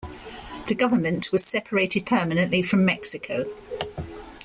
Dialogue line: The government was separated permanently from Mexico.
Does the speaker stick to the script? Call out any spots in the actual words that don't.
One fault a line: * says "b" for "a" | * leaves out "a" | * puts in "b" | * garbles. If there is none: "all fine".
all fine